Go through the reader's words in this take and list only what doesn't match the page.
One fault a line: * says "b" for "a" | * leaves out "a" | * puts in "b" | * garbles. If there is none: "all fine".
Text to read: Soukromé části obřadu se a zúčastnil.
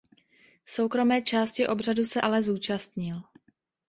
* says "ale" for "a"